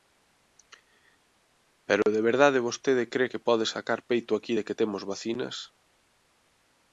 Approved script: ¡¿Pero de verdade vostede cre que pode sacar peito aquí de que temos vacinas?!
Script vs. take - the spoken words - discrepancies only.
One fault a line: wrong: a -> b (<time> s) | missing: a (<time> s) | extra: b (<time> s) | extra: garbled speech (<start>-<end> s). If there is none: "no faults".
no faults